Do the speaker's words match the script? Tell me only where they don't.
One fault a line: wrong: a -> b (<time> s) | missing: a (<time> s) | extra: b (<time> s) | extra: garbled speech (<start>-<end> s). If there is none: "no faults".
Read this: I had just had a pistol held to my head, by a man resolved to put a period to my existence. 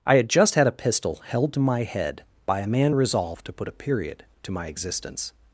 no faults